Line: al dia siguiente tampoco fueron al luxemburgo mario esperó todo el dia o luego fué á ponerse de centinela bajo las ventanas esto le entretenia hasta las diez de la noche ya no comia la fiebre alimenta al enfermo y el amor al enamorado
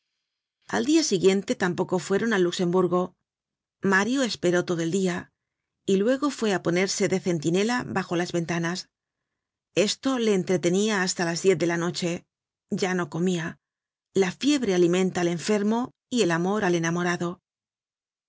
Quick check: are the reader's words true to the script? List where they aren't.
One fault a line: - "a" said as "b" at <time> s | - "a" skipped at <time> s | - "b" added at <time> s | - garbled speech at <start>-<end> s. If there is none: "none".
- "o" said as "y" at 5.8 s